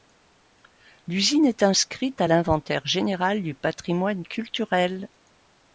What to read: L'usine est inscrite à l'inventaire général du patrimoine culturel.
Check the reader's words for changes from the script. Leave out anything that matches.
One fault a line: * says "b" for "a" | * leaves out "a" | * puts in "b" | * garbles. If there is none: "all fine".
all fine